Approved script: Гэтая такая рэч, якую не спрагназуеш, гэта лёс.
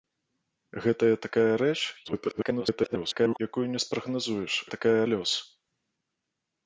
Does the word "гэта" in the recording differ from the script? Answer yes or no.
yes